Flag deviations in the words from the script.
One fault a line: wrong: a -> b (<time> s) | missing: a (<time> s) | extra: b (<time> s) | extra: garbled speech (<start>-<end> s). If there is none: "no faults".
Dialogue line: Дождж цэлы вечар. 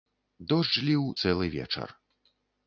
extra: ліў (0.9 s)